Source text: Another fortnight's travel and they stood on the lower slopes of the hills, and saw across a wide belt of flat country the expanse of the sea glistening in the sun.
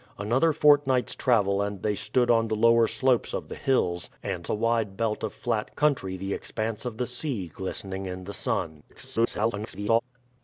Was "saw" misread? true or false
true